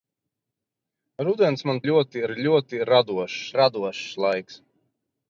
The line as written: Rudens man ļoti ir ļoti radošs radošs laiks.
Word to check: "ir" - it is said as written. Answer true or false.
true